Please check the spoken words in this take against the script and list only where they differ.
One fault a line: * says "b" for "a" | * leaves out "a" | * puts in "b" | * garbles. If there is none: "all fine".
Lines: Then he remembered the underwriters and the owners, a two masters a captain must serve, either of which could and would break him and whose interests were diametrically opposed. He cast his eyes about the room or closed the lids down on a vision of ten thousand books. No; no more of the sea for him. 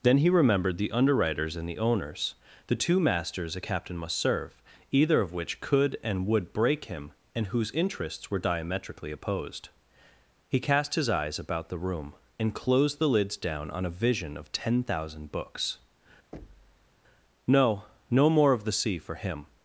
* says "the" for "a"
* says "and" for "or"